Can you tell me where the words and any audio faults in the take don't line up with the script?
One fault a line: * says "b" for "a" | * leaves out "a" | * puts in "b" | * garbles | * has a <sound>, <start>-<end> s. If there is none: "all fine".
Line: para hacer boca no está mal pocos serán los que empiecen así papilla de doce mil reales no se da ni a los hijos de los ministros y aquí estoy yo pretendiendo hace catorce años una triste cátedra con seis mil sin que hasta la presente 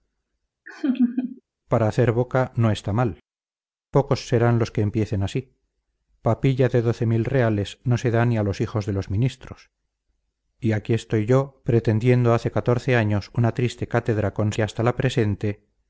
* has a laugh, 0.7-1.4 s
* leaves out "seis mil sin"